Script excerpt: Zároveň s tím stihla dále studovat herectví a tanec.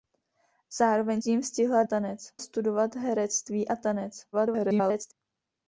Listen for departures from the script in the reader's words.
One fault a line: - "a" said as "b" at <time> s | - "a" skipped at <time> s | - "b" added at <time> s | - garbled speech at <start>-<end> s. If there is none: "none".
- "s" skipped at 1.2 s
- "dále" said as "tanec" at 1.8 s
- garbled speech at 4.3-5.1 s